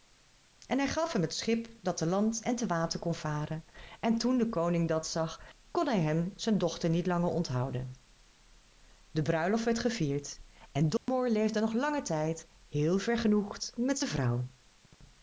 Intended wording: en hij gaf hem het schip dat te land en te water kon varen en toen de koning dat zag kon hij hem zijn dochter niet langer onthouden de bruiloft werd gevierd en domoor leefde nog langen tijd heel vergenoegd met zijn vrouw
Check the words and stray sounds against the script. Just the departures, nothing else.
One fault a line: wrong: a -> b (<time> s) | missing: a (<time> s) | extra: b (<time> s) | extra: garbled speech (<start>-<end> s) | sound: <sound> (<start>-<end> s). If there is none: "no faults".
sound: dropout (11.0-11.1 s)